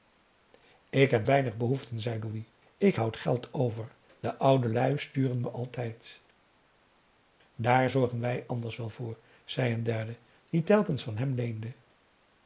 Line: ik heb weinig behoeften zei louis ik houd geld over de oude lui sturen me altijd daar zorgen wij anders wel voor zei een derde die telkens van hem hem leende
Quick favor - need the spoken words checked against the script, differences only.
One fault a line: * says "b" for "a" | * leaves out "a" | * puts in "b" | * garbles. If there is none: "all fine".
* leaves out "hem"